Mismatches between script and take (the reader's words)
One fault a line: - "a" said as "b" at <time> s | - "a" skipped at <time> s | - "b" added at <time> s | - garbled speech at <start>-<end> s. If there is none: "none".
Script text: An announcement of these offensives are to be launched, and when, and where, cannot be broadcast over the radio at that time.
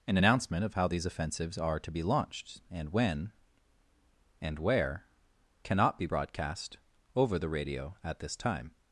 - "how" added at 0.7 s
- "that" said as "this" at 8.2 s